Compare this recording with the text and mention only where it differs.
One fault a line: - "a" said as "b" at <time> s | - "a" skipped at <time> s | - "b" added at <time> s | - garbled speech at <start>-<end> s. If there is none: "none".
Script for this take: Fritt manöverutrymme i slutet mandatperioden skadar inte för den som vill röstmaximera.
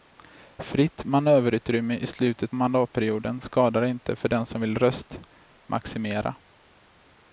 none